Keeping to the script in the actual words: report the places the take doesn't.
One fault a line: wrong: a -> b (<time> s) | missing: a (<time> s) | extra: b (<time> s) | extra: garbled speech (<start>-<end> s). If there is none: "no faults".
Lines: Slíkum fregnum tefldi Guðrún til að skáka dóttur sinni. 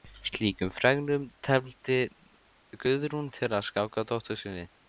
no faults